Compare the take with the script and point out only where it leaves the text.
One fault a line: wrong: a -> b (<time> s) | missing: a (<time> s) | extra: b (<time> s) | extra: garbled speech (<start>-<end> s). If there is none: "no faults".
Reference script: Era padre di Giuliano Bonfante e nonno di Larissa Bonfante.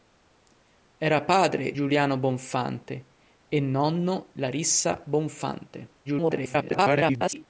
missing: di (1.8 s)
missing: di (4.3 s)
extra: garbled speech (6.0-7.5 s)